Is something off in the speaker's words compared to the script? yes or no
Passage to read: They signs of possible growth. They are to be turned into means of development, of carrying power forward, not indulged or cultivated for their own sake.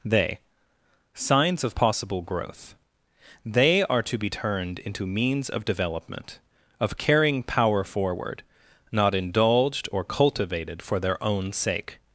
no